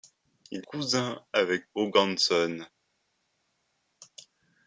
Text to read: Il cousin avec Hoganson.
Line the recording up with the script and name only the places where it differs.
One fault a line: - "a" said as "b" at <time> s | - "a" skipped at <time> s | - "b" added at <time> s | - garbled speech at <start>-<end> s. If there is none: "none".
none